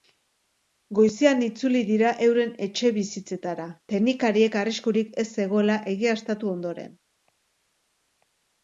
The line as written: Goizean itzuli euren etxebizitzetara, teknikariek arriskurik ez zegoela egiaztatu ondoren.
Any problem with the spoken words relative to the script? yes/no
yes